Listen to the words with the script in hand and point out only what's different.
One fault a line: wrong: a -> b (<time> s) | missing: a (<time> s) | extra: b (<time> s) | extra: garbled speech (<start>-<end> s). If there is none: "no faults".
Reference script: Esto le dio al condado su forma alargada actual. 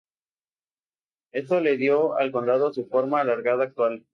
no faults